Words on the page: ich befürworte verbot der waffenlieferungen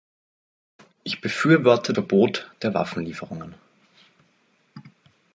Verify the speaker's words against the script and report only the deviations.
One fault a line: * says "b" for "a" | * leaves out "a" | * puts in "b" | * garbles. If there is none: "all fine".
all fine